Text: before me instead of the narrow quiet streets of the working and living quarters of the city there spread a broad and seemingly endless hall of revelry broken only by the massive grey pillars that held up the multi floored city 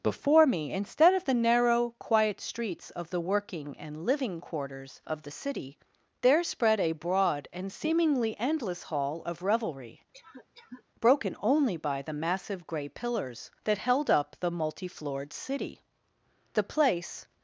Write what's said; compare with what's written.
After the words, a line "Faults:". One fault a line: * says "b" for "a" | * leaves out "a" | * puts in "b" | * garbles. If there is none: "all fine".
before me instead of the narrow quiet streets of the working and living quarters of the city there spread a broad and seemingly endless hall of revelry broken only by the massive grey pillars that held up the multi floored city the place
Faults:
* puts in "the place"